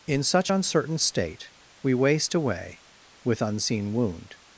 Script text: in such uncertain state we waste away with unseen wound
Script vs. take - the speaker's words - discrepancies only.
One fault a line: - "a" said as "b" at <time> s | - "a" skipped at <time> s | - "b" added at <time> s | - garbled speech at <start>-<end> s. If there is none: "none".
none